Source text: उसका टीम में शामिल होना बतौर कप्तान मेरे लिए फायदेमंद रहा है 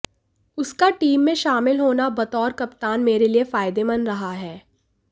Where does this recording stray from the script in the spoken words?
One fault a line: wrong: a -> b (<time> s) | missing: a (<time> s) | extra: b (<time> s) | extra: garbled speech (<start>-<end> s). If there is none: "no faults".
no faults